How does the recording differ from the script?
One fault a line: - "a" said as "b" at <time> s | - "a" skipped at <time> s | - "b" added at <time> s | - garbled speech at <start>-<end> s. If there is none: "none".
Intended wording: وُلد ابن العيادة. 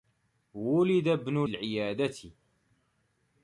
none